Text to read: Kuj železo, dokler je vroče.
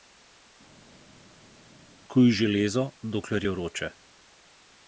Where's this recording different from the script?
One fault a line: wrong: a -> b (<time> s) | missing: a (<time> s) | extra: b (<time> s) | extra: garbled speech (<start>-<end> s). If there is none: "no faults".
no faults